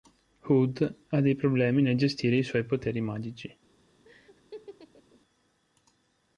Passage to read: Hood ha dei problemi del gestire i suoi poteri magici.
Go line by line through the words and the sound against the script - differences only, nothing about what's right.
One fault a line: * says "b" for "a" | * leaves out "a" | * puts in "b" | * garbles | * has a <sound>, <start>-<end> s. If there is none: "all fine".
* says "nel" for "del"
* has a laugh, 4.0-5.2 s